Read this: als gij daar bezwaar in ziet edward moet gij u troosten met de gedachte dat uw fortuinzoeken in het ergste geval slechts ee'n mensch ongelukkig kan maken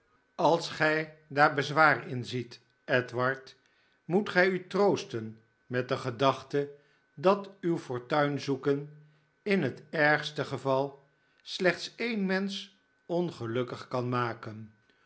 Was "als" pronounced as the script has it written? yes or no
yes